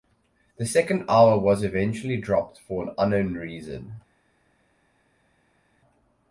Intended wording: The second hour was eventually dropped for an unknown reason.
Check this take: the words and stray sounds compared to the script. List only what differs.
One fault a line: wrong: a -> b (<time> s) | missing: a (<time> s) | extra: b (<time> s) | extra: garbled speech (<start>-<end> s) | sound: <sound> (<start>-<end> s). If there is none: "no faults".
no faults